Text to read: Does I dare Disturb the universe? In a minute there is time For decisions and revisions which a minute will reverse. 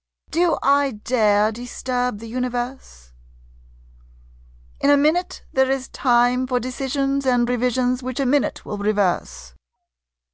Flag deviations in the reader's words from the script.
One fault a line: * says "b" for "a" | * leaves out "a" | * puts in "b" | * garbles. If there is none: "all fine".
* says "Do" for "Does"